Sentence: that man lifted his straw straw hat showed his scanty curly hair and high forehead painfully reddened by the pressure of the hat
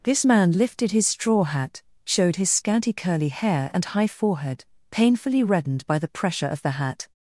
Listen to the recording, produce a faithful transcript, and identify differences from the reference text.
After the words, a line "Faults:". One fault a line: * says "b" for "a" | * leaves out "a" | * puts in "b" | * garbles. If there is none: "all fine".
this man lifted his straw hat showed his scanty curly hair and high forehead painfully reddened by the pressure of the hat
Faults:
* says "this" for "that"
* leaves out "straw"